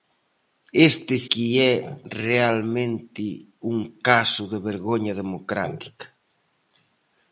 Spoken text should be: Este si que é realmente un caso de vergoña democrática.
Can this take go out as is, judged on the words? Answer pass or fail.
fail